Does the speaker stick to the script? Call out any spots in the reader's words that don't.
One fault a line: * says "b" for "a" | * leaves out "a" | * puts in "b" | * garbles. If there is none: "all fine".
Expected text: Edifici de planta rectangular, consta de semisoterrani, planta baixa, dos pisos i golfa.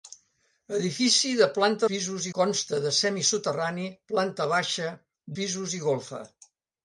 * says "pisos" for "rectangular"
* leaves out "dos"